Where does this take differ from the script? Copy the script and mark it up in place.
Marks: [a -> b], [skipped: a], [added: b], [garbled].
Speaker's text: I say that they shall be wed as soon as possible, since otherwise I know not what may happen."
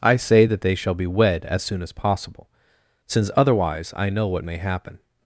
I say that they shall be wed as soon as possible, since otherwise I know [skipped: not] what may happen."